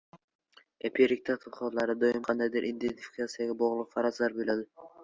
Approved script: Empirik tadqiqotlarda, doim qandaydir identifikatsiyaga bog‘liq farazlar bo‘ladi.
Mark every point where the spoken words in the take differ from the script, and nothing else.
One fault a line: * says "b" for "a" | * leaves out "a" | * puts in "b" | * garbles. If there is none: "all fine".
all fine